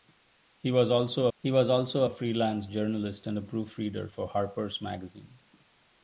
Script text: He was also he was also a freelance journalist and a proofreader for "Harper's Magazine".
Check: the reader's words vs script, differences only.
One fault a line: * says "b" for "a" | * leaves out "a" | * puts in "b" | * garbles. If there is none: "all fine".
all fine